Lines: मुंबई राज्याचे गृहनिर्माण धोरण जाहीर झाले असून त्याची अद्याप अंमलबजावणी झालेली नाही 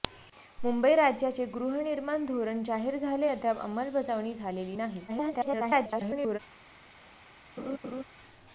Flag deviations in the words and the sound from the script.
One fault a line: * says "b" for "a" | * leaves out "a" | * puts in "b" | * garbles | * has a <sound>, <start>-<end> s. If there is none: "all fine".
* leaves out "असून त्याची"
* garbles
* has a laugh, 7.6-8.0 s